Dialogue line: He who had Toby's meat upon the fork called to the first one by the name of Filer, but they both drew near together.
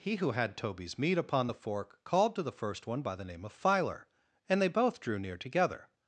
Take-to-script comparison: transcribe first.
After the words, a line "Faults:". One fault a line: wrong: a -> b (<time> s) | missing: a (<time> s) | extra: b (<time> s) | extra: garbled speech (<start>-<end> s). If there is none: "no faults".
He who had Toby's meat upon the fork called to the first one by the name of Filer, and they both drew near together.
Faults:
wrong: but -> and (4.5 s)